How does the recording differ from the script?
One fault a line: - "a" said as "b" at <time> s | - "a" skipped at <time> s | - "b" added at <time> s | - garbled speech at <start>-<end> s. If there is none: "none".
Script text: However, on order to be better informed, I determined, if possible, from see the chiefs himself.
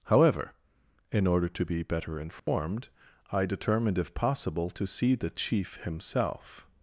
- "on" said as "in" at 1.1 s
- "from" said as "to" at 4.7 s
- "chiefs" said as "chief" at 5.3 s